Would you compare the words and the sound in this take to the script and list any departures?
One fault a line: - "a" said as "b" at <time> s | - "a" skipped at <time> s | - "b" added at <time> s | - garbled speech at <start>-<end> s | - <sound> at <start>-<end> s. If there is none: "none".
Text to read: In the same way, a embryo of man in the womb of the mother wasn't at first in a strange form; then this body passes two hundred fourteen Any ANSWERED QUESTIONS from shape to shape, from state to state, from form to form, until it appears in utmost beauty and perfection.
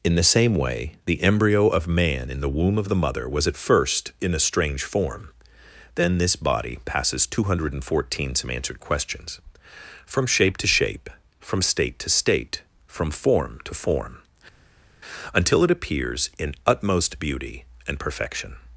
- "a" said as "the" at 1.1 s
- "wasn't" said as "was" at 3.3 s
- "Any" said as "SOME" at 8.3 s